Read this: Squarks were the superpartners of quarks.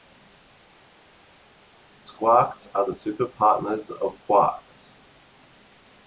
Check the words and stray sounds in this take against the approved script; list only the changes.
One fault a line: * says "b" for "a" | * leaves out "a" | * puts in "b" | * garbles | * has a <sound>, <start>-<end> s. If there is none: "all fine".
* says "are" for "were"